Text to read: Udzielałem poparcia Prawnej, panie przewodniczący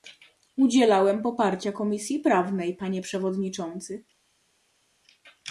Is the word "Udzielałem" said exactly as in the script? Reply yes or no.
yes